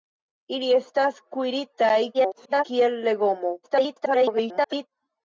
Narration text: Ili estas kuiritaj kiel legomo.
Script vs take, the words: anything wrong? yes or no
yes